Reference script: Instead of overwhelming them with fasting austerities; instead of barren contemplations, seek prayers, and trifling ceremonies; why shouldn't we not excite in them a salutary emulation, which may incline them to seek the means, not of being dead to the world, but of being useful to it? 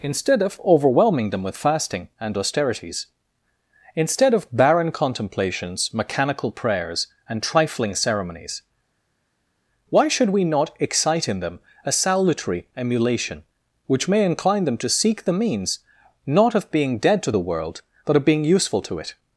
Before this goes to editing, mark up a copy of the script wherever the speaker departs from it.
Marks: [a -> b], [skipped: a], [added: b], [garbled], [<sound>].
Instead of overwhelming them with fasting [added: and] austerities; instead of barren contemplations, [seek -> mechanical] prayers, and trifling ceremonies; why [shouldn't -> should] we not excite in them a salutary emulation, which may incline them to seek the means, not of being dead to the world, but of being useful to it?